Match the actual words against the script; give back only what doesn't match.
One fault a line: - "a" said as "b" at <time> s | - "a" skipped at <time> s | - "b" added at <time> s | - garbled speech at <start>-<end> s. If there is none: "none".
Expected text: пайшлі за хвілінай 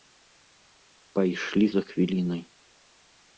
none